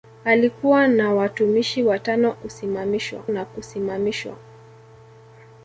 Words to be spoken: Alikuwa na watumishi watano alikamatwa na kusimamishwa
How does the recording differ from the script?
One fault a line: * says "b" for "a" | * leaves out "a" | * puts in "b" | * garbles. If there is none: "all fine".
* says "kusimamishwa" for "alikamatwa"